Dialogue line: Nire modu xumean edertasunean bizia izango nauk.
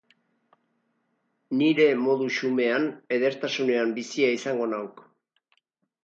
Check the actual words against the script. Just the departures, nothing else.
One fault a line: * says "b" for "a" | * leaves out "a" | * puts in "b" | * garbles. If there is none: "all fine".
all fine